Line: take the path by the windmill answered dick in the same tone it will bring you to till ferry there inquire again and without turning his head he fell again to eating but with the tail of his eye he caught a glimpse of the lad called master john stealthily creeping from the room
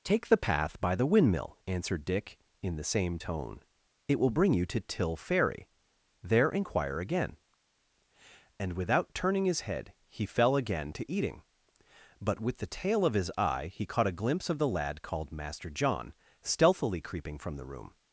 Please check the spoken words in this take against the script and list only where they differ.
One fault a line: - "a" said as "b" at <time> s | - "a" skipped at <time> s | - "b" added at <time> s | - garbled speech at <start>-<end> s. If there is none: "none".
none